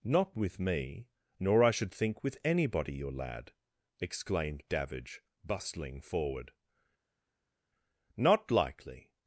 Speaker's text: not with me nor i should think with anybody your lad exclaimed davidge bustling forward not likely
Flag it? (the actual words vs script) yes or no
no